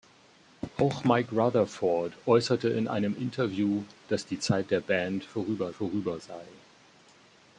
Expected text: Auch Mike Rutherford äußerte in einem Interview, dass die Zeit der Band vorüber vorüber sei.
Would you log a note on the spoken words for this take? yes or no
no